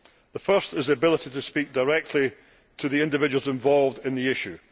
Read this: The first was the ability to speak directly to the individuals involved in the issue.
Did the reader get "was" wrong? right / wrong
wrong